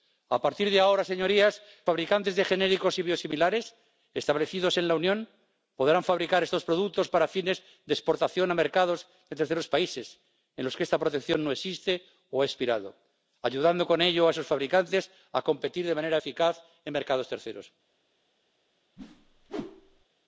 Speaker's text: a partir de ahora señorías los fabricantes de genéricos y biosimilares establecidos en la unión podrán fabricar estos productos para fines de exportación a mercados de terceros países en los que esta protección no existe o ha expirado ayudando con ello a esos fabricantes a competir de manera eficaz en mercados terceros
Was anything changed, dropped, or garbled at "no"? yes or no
no